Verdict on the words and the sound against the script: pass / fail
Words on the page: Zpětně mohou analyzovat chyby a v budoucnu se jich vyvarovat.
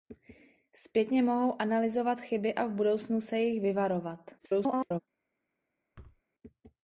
fail